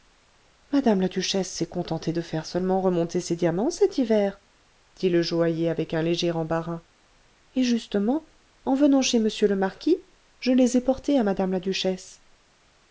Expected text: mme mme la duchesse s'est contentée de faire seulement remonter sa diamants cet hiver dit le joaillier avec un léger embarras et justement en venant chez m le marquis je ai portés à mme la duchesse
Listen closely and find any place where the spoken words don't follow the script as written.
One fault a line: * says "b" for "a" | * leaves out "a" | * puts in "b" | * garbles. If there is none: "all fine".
* leaves out "mme"
* says "ses" for "sa"
* puts in "les"